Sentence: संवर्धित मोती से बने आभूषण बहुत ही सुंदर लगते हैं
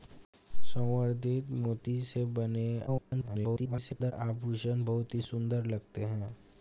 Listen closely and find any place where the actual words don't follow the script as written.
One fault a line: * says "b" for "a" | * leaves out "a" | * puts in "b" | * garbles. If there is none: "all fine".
* garbles